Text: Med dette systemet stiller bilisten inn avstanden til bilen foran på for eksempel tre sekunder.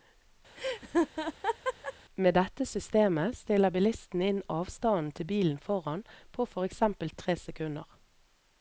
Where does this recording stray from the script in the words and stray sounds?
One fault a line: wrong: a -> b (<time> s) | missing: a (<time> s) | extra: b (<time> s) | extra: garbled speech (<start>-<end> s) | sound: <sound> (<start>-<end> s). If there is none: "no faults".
sound: laugh (0.5-1.9 s)